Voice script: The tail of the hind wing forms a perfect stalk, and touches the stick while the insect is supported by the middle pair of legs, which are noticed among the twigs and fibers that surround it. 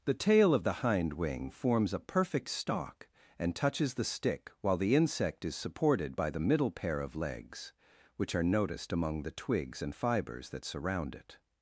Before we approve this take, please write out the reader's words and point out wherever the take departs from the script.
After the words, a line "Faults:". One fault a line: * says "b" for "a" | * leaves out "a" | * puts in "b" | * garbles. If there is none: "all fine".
The tail of the hind wing forms a perfect stalk, and touches the stick while the insect is supported by the middle pair of legs, which are noticed among the twigs and fibers that surround it.
Faults:
all fine